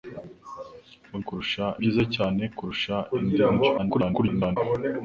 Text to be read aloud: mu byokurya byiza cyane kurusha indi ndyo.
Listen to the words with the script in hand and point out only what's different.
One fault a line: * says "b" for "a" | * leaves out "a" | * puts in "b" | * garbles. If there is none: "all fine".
* says "kurusha" for "byokurya"
* garbles